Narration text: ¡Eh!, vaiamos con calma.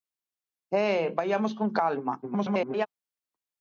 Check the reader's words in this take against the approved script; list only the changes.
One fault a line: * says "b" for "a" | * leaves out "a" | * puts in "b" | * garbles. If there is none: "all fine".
* garbles